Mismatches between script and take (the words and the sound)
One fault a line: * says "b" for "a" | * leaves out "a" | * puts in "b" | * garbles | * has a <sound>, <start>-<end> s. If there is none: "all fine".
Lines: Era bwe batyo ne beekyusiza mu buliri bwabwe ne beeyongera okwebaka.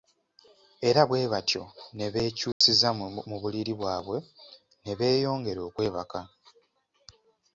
* has a dropout, 2.5-2.6 s